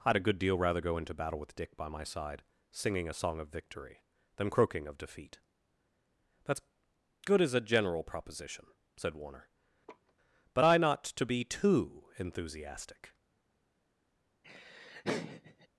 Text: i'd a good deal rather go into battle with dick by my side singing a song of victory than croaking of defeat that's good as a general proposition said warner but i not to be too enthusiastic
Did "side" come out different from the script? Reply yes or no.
no